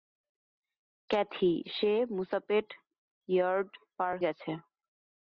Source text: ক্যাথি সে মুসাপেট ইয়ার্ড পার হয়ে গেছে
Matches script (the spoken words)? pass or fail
fail